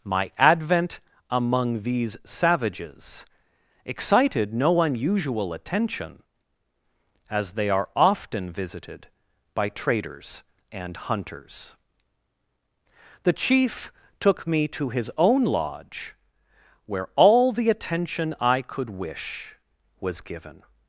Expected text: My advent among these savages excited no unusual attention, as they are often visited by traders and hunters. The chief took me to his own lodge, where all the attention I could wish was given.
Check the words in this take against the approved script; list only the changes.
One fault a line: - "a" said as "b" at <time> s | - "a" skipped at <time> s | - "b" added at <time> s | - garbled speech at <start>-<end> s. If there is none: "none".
none